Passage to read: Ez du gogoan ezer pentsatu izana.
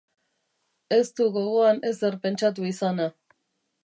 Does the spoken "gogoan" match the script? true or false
true